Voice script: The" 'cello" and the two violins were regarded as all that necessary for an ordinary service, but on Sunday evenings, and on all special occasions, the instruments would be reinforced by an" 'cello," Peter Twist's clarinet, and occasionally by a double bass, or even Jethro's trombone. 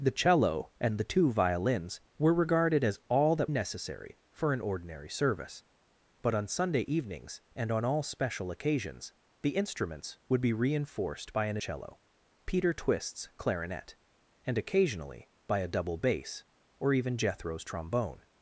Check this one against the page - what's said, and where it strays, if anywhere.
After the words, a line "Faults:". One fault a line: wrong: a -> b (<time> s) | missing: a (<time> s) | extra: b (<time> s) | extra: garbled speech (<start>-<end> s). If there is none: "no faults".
The" 'cello" and the two violins were regarded as all that necessary for an ordinary service, but on Sunday evenings, and on all special occasions, the instruments would be reinforced by an" 'cello," Peter Twist's clarinet, and occasionally by a double bass, or even Jethro's trombone.
Faults:
no faults